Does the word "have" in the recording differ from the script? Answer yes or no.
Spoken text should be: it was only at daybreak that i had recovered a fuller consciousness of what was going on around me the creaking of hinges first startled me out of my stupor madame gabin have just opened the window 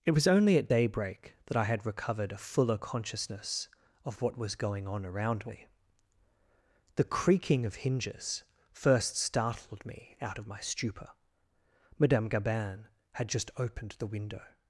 yes